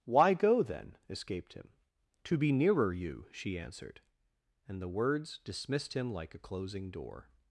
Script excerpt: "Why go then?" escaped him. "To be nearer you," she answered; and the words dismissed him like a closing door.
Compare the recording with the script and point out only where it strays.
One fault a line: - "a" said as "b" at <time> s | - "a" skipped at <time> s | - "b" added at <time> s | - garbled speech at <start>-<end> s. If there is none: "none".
none